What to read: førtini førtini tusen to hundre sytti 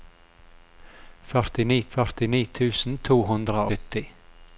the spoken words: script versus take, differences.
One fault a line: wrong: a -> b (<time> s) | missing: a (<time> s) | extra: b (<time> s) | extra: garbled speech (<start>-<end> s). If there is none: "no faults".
no faults